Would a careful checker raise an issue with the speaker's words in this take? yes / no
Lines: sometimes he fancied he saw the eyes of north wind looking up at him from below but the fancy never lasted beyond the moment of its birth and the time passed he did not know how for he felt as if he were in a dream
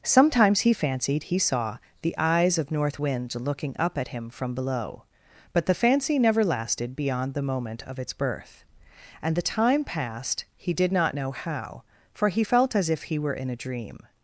no